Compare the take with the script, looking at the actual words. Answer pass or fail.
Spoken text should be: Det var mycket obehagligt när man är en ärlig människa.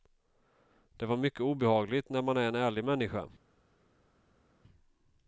pass